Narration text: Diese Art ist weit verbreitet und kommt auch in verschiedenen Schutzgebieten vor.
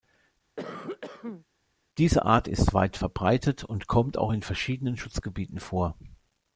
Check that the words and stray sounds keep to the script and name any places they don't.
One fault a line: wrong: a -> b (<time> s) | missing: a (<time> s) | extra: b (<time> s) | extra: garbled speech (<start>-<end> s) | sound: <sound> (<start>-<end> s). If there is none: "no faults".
sound: cough (0.6-1.5 s)